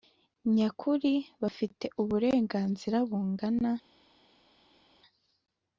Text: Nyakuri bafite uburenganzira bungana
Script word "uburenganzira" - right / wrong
right